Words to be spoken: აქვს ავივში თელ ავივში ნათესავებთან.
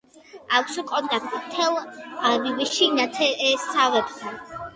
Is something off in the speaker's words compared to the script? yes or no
yes